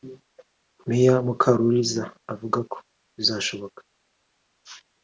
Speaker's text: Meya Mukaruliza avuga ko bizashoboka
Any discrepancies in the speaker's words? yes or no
no